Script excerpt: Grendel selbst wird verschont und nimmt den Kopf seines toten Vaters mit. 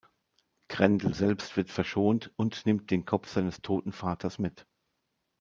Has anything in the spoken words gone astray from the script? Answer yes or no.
no